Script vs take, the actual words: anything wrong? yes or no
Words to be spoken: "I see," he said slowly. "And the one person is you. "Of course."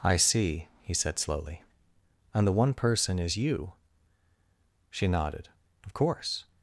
yes